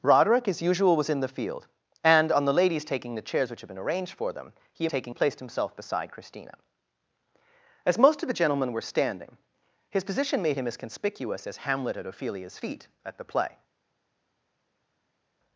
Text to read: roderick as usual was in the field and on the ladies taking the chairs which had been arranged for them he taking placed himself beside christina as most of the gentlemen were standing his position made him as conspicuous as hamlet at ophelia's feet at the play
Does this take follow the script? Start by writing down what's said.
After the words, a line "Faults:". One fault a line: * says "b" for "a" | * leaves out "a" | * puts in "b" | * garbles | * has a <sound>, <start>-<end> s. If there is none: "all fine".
roderick as usual was in the field and on the ladies taking the chairs which had been arranged for them he taking placed himself beside christina as most of the gentlemen were standing his position made him as conspicuous as hamlet at ophelia's feet at the play
Faults:
all fine